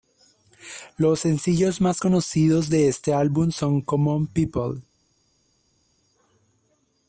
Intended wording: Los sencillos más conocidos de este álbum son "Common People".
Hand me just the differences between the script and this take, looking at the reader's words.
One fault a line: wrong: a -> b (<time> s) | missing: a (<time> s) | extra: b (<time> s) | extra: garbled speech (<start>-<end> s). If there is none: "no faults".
no faults